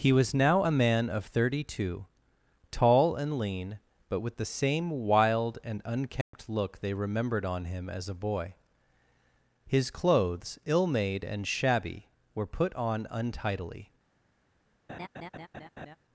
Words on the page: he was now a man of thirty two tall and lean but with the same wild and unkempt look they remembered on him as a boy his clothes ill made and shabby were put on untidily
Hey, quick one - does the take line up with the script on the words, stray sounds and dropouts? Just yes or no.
no